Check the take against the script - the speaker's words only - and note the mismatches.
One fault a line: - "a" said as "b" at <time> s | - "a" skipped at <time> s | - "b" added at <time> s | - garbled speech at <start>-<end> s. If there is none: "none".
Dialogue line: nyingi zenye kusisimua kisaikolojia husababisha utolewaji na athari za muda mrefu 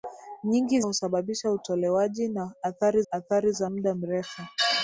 - "zenye kusisimua kisaikolojia" skipped at 0.8 s
- "athari" added at 3.1 s